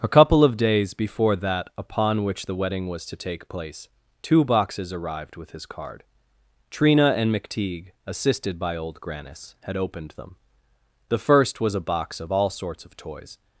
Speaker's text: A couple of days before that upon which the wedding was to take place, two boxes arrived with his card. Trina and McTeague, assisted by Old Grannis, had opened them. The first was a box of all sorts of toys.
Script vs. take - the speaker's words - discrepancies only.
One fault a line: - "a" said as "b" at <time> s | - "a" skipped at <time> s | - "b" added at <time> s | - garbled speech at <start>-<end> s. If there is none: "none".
none